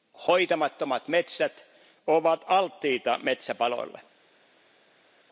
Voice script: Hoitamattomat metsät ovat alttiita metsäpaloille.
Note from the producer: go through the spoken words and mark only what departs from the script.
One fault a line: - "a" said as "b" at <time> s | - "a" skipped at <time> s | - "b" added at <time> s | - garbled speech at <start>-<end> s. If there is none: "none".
none